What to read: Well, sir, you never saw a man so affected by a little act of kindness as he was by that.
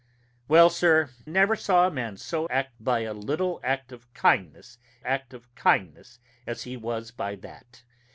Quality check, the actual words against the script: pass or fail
fail